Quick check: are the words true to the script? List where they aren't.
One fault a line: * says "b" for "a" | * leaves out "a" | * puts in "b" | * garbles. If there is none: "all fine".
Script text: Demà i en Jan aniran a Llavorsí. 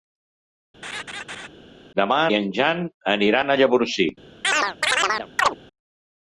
all fine